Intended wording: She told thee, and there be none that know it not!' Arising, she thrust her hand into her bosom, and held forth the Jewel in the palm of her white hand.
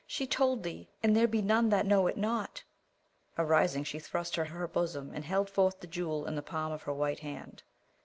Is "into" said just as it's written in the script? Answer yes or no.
no